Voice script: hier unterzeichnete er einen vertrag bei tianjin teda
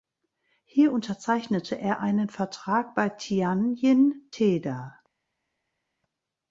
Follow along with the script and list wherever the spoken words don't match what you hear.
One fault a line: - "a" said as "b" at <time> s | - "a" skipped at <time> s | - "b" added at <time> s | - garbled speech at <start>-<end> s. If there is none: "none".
none